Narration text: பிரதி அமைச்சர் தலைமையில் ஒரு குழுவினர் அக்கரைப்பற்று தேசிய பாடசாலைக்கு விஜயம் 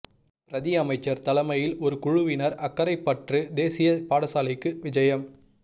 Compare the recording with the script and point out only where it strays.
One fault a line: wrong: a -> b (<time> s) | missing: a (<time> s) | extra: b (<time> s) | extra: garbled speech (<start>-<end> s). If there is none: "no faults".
no faults